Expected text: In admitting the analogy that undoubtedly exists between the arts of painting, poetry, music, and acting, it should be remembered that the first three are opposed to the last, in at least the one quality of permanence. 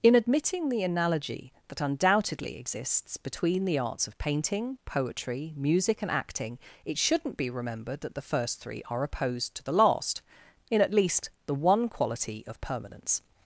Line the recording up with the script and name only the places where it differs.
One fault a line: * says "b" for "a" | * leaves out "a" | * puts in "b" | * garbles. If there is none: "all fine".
* says "shouldn't" for "should"